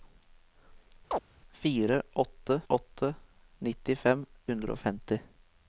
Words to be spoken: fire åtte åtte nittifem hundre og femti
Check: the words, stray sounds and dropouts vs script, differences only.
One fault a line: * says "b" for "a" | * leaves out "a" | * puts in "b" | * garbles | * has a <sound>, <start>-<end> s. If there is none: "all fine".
* has a chirp, 1.1-1.2 s